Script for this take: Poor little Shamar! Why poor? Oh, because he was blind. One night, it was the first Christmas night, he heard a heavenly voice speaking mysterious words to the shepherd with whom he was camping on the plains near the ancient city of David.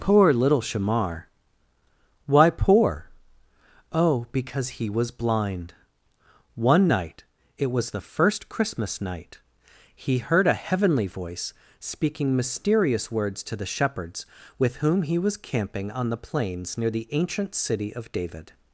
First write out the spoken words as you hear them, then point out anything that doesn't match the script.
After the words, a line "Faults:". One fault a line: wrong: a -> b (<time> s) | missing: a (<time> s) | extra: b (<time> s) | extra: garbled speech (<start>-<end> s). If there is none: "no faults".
Poor little Shamar! Why poor? Oh, because he was blind. One night, it was the first Christmas night, he heard a heavenly voice speaking mysterious words to the shepherds with whom he was camping on the plains near the ancient city of David.
Faults:
wrong: shepherd -> shepherds (13.7 s)